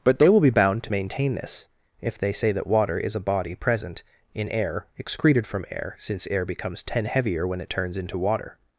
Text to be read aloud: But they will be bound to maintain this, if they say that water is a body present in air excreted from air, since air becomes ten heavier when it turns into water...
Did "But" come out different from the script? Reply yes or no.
no